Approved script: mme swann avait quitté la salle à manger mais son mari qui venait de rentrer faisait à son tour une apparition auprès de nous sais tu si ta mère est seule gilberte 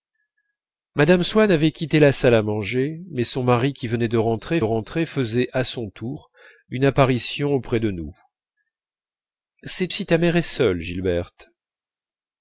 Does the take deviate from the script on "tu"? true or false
true